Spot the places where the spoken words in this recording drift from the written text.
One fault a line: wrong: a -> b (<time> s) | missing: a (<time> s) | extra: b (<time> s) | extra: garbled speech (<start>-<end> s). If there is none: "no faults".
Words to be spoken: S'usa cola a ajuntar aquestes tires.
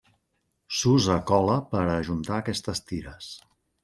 extra: per (1.7 s)